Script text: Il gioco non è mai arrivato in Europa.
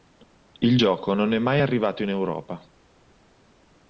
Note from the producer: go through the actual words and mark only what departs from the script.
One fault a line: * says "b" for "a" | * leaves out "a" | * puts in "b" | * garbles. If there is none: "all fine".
all fine